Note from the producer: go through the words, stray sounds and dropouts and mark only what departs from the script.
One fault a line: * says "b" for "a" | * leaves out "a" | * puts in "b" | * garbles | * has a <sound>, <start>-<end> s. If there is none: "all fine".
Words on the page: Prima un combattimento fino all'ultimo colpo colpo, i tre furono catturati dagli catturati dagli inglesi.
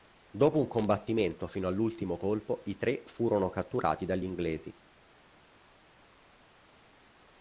* says "Dopo" for "Prima"
* leaves out "colpo"
* leaves out "catturati dagli"